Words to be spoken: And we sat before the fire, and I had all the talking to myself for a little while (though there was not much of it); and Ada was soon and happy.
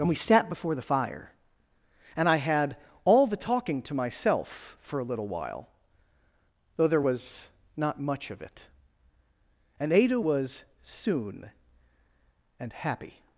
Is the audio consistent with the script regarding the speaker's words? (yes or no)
yes